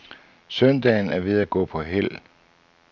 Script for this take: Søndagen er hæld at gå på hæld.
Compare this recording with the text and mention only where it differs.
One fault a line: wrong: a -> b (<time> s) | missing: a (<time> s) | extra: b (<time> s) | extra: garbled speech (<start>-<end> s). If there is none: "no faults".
wrong: hæld -> ved (1.2 s)